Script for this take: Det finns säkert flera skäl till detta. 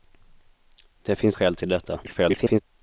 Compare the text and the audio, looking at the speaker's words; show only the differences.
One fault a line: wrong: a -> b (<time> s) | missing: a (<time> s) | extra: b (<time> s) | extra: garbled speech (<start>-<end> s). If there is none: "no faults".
missing: säkert flera (1.4 s)
extra: garbled speech (2.0-2.6 s)